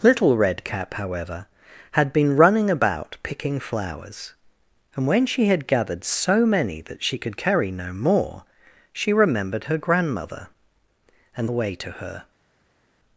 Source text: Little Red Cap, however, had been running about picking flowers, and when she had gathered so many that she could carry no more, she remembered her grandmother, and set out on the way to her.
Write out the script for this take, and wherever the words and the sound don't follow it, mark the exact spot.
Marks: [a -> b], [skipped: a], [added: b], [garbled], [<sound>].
Little Red Cap, however, had been running about picking flowers, and when she had gathered so many that she could carry no more, she remembered her grandmother, and [skipped: set out on] the way to her.